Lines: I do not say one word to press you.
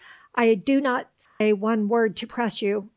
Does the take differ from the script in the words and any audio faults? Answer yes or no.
yes